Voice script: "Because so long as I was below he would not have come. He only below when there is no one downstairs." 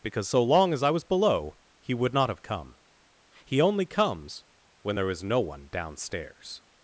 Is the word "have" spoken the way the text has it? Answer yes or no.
yes